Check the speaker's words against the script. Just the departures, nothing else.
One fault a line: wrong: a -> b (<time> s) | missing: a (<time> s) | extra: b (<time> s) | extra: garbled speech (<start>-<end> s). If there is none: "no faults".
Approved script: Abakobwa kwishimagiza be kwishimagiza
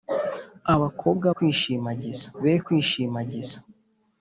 no faults